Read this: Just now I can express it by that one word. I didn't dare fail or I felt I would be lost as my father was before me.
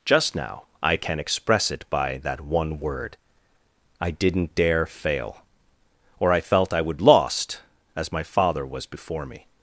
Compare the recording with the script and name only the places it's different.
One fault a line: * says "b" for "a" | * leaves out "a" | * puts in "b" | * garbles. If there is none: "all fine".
* leaves out "be"